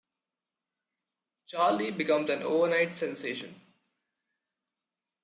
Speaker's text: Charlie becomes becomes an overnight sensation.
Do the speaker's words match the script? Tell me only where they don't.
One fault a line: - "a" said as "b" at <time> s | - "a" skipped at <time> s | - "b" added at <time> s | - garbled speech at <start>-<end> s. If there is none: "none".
- "becomes" skipped at 2.3 s